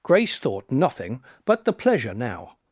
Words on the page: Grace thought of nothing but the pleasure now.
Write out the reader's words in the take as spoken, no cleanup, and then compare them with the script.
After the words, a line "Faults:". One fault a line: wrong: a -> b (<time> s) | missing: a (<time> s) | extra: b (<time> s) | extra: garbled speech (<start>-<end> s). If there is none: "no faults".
Grace thought nothing but the pleasure now.
Faults:
missing: of (0.7 s)